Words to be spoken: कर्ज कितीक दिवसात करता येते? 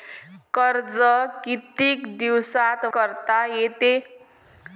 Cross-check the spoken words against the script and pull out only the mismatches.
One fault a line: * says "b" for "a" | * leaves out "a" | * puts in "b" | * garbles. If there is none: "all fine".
all fine